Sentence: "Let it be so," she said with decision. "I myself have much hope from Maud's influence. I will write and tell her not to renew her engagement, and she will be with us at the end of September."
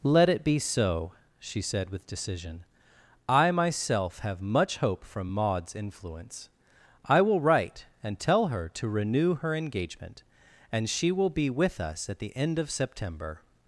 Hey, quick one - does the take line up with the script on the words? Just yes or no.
no